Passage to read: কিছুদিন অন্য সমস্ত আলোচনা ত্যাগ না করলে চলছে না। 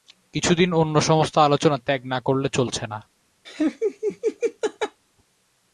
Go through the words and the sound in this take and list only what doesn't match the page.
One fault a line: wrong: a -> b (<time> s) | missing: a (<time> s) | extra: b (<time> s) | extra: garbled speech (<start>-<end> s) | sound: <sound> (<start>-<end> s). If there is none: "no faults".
sound: laugh (3.4-5.0 s)